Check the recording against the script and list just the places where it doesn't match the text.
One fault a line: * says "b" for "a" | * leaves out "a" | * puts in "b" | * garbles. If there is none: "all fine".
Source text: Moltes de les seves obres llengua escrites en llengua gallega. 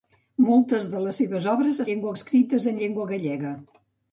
all fine